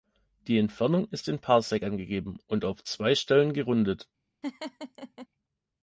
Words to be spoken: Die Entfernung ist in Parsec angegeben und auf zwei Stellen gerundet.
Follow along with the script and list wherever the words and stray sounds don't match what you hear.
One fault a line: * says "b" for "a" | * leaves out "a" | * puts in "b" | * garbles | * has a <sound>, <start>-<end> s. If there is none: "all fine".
* has a laugh, 4.4-5.3 s